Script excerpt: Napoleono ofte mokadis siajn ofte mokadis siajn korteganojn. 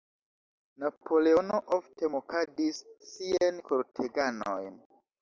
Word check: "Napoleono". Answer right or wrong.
right